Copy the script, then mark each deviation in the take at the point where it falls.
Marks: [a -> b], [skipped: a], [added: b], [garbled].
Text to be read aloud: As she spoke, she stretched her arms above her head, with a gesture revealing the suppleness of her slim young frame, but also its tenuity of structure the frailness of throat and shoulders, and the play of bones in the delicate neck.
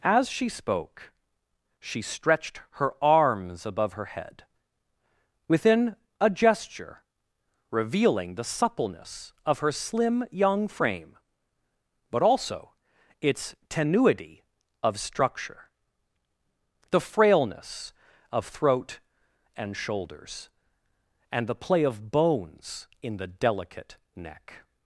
As she spoke, she stretched her arms above her head, [with -> within] a gesture revealing the suppleness of her slim young frame, but also its tenuity of structure the frailness of throat and shoulders, and the play of bones in the delicate neck.